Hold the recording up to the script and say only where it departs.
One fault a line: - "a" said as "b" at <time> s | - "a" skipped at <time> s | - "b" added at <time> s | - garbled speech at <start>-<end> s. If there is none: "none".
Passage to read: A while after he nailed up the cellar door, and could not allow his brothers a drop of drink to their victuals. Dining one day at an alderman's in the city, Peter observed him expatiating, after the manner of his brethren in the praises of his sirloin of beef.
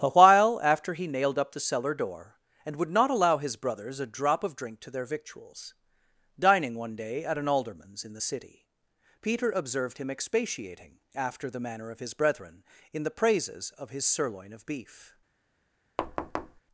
- "could" said as "would" at 2.8 s